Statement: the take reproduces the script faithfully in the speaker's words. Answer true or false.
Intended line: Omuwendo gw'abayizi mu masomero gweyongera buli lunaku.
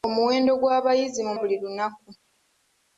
false